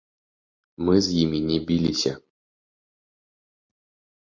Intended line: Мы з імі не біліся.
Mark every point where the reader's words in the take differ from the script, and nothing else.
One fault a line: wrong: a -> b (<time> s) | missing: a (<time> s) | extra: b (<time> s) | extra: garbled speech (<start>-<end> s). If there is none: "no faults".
no faults